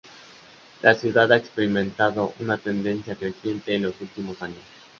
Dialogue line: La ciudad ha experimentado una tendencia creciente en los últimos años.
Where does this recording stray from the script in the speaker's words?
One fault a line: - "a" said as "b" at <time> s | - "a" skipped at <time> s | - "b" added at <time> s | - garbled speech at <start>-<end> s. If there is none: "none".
none